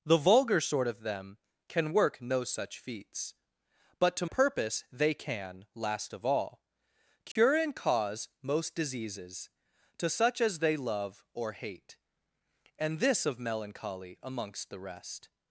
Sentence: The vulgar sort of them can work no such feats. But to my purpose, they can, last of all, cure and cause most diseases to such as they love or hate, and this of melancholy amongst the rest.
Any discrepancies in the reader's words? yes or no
yes